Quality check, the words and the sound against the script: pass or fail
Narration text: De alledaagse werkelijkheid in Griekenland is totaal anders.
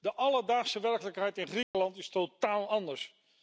fail